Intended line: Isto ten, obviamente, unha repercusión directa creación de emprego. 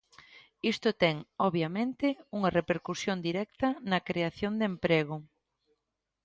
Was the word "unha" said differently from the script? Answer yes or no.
no